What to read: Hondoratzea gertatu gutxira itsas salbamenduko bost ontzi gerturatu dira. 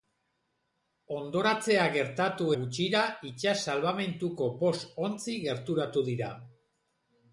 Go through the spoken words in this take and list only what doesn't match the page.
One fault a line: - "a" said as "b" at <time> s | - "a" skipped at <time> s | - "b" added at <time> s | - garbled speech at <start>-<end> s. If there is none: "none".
none